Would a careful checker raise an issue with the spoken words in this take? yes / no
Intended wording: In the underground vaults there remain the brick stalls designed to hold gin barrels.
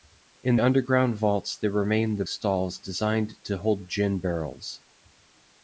yes